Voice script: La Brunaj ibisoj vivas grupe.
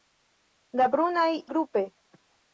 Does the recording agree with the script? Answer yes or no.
no